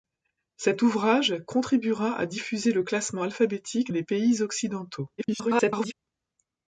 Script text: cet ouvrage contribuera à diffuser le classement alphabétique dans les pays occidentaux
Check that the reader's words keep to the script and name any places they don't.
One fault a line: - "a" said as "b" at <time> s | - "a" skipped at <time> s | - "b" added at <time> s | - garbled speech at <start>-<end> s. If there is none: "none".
- "dans" skipped at 3.9 s
- garbled speech at 5.2-5.9 s